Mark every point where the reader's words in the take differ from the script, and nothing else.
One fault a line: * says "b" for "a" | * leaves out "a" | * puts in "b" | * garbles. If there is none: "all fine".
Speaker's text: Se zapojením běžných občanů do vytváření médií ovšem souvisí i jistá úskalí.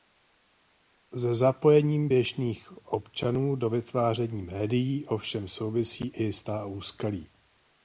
all fine